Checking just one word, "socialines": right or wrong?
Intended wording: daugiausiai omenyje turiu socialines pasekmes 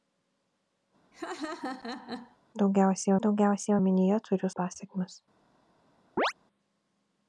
wrong